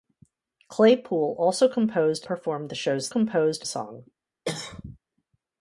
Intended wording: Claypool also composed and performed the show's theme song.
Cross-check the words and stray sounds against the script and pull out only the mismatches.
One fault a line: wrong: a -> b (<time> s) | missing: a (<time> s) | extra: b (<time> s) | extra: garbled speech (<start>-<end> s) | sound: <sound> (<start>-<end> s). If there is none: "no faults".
missing: and (2.3 s)
wrong: theme -> composed (3.1 s)
sound: cough (4.4-5.0 s)